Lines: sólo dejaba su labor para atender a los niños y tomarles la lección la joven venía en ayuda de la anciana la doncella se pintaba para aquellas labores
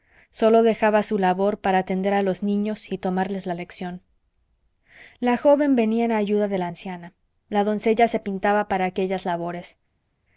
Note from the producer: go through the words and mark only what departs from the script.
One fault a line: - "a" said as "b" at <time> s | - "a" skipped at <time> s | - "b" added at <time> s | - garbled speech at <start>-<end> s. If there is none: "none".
none